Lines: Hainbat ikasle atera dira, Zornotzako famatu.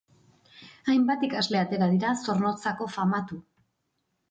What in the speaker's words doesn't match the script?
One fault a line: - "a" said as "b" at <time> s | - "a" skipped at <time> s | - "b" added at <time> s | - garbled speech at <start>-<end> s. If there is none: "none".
none